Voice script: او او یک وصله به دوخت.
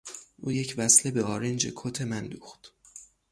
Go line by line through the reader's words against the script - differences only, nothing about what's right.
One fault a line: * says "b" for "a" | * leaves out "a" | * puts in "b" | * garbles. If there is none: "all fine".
* leaves out "او"
* puts in "آرنج کت من"